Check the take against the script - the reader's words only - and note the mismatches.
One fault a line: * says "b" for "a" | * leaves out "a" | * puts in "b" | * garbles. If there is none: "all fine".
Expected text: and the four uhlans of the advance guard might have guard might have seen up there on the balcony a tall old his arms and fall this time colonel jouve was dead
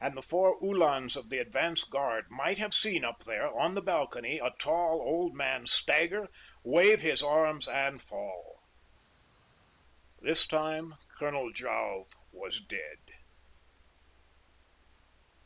* leaves out "guard might have"
* puts in "man stagger wave"